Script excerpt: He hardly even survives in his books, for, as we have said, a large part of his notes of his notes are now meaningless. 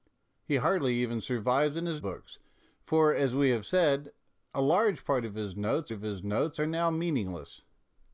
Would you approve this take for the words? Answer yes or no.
yes